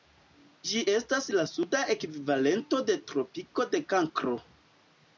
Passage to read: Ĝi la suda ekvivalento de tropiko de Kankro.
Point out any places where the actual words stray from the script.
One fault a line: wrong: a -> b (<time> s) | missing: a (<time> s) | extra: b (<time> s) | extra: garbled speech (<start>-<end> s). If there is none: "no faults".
extra: estas (0.9 s)